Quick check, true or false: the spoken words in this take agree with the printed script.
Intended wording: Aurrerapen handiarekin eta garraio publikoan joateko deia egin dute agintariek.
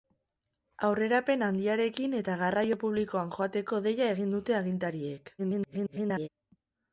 false